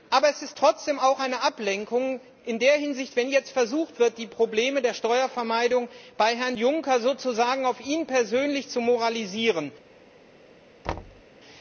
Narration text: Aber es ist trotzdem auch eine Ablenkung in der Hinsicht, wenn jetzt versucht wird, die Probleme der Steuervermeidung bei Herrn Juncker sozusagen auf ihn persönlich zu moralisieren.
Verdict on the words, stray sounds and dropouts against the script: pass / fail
fail